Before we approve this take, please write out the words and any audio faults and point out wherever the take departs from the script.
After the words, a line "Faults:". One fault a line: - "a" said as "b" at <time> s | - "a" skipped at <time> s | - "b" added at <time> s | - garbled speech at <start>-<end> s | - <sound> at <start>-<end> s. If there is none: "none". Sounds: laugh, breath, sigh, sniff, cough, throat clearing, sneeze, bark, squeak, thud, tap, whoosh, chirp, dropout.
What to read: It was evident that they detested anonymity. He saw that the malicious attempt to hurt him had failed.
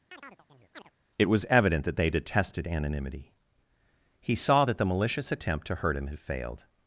It was evident that they detested anonymity. He saw that the malicious attempt to hurt him had failed.
Faults:
- chirp at 0.1-0.9 s